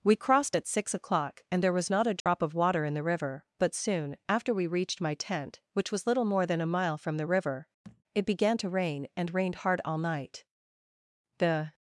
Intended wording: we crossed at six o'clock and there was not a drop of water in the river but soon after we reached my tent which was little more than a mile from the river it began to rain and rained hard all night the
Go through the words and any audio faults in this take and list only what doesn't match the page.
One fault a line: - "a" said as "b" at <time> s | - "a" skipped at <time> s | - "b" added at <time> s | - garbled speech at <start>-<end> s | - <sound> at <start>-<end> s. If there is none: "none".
- dropout at 2.2-2.3 s
- thud at 7.8-8.0 s